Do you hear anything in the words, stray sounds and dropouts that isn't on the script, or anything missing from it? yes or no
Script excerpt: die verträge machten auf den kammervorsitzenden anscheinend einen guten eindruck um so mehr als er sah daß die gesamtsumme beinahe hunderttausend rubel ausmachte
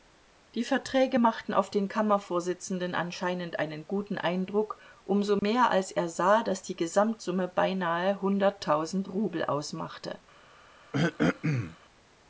yes